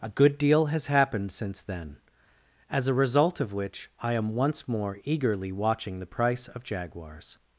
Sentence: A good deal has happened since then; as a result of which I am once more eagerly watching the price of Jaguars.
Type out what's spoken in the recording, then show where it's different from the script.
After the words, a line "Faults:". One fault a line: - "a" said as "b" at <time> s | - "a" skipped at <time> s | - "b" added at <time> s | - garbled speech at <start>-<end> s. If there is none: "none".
A good deal has happened since then; as a result of which I am once more eagerly watching the price of Jaguars.
Faults:
none